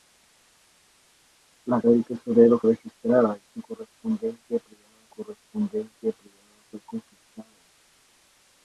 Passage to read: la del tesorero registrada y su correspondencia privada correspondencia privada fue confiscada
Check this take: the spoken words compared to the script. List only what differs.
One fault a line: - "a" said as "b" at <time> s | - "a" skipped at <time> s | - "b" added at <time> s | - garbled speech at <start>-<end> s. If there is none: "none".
none